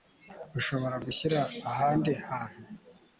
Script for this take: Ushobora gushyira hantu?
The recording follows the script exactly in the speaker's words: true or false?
false